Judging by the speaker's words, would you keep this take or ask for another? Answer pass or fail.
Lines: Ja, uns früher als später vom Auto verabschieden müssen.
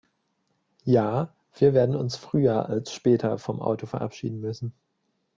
fail